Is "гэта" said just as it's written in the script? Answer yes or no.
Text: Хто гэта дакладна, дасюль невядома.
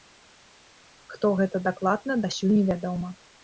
yes